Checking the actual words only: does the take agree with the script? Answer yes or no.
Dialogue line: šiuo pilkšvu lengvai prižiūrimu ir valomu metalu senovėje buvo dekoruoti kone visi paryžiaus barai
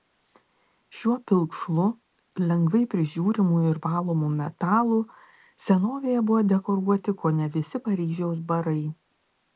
yes